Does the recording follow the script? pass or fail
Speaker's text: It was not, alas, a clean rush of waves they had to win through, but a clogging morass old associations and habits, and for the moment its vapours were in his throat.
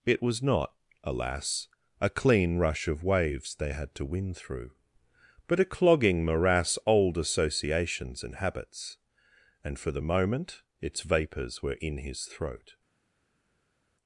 pass